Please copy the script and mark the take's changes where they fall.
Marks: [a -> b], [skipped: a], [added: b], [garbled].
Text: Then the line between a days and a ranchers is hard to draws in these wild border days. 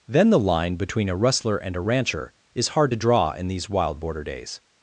Then the line between a [days -> rustler] and a [ranchers -> rancher] is hard to [draws -> draw] in these wild border days.